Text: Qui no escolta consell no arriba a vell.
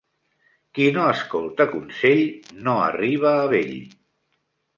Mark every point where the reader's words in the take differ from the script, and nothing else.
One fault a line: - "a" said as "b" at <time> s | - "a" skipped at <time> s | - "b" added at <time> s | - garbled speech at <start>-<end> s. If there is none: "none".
none